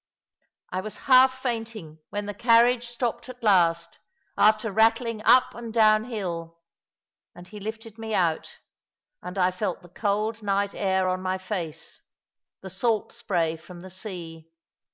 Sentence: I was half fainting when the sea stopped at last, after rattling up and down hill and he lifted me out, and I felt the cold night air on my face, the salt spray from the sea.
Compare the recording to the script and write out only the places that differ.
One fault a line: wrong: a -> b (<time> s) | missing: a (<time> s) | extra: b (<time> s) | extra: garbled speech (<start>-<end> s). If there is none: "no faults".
wrong: sea -> carriage (2.3 s)